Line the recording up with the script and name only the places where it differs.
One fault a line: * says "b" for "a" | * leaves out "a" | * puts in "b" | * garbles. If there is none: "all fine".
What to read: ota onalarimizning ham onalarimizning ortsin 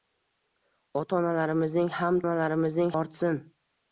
all fine